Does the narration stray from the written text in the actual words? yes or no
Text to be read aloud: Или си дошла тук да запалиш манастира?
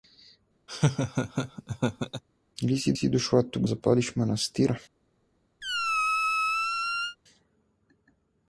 yes